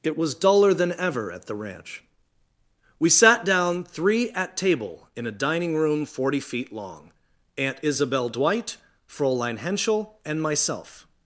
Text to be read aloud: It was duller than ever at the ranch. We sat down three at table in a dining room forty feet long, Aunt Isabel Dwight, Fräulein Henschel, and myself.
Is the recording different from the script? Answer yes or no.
no